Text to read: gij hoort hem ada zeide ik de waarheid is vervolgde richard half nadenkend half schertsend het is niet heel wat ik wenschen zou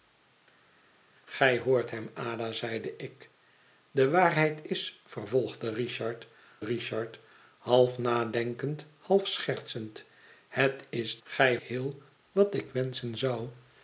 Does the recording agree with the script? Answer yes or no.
no